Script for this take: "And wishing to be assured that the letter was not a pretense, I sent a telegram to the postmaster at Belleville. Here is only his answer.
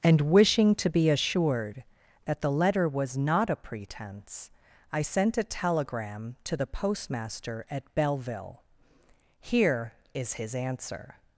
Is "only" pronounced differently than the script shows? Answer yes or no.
yes